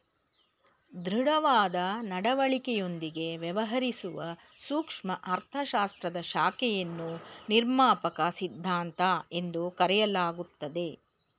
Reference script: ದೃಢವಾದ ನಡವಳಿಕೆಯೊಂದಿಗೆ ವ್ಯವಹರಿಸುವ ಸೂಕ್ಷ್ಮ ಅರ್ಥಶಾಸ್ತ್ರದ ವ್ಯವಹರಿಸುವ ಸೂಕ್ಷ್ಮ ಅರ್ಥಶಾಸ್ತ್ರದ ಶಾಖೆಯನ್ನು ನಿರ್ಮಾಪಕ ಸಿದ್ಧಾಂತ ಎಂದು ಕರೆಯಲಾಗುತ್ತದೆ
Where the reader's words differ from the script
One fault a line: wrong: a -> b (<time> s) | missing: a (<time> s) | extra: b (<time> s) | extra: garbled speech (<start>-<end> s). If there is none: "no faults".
missing: ವ್ಯವಹರಿಸುವ ಸೂಕ್ಷ್ಮ ಅರ್ಥಶಾಸ್ತ್ರದ (6.2 s)